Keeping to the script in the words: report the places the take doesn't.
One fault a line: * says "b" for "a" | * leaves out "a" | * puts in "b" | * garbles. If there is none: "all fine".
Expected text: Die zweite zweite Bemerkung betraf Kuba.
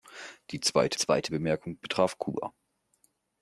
all fine